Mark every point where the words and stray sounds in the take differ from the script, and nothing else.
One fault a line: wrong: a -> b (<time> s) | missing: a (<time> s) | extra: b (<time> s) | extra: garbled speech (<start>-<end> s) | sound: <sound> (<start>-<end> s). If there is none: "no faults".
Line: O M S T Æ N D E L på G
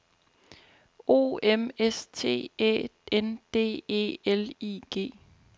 wrong: på -> I (4.6 s)